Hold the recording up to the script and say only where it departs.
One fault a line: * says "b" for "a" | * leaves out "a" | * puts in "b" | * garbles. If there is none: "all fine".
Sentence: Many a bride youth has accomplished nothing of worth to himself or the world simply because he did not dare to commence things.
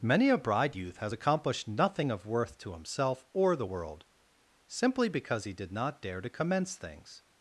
all fine